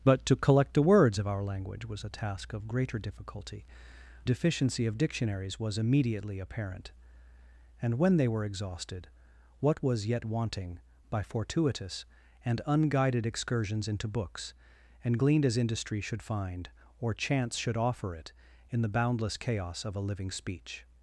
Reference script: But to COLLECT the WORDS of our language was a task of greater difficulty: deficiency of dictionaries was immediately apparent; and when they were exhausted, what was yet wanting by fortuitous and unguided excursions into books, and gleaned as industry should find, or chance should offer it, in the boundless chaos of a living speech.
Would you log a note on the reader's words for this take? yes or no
no